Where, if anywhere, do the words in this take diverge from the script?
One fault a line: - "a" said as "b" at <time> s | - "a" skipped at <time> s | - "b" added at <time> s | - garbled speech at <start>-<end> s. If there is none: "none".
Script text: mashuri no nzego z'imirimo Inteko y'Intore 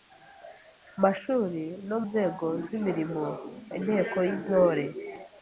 none